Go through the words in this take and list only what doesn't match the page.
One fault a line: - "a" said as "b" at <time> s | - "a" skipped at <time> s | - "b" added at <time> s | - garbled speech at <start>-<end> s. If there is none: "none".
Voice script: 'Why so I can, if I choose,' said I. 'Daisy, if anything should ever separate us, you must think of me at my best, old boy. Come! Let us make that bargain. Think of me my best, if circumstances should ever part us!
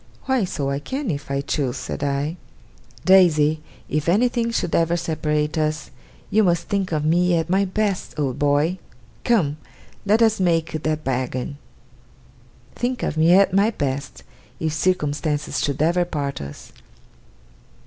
- "at" added at 13.3 s